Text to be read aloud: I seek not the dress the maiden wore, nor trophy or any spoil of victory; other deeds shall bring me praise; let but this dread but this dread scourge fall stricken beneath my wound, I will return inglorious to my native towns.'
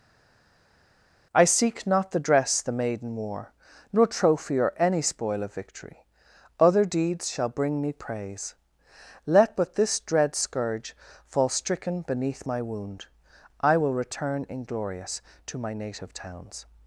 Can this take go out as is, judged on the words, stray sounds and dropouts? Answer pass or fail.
fail